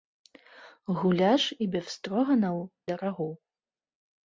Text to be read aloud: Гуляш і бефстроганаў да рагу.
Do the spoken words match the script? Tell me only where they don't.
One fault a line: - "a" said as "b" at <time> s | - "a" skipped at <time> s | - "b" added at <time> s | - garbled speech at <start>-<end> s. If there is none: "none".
none